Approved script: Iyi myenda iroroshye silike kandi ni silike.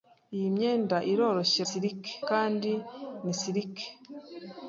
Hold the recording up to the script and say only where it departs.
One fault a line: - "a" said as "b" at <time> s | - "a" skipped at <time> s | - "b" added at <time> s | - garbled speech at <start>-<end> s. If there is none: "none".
none